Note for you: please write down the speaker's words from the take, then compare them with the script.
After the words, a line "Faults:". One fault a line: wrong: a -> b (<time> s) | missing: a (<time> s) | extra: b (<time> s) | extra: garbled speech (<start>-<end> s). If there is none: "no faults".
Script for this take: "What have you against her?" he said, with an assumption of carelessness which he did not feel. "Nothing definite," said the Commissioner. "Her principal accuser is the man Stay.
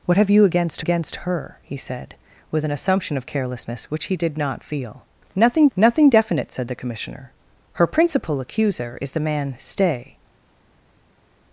"What have you against against her?" he said, with an assumption of carelessness which he did not feel. "Nothing nothing definite," said the Commissioner. "Her principal accuser is the man Stay.
Faults:
extra: against (0.8 s)
extra: nothing (5.8 s)